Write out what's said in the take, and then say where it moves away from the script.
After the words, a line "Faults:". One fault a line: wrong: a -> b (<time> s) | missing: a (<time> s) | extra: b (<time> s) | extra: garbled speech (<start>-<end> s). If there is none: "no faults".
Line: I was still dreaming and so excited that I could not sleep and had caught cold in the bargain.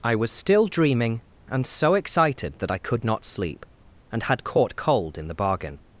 I was still dreaming and so excited that I could not sleep and had caught cold in the bargain.
Faults:
no faults